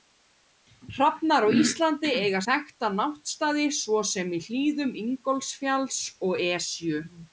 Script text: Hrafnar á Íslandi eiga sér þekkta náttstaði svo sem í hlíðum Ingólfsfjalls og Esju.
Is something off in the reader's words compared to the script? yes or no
yes